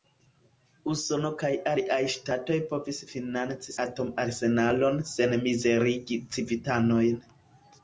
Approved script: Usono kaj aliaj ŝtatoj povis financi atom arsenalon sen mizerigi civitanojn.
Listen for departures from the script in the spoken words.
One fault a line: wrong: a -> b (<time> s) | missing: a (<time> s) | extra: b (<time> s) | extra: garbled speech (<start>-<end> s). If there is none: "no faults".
no faults